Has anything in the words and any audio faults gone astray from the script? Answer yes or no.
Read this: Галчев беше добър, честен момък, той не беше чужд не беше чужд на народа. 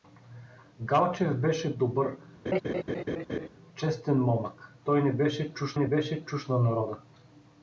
yes